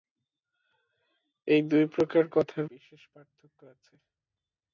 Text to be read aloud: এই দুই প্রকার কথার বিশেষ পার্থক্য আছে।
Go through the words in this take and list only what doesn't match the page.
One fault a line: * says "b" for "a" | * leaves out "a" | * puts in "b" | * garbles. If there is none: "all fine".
all fine